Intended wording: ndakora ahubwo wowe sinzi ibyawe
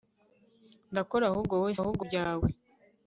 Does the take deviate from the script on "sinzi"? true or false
true